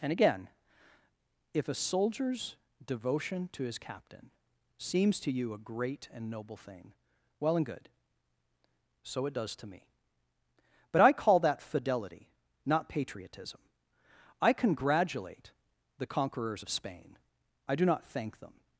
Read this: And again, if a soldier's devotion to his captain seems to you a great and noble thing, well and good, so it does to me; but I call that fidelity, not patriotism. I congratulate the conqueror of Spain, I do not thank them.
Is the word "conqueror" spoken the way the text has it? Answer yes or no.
no